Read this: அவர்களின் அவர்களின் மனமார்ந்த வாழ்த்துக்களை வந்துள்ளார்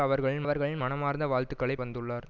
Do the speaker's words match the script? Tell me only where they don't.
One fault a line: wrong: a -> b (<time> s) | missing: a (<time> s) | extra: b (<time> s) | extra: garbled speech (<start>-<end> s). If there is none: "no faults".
no faults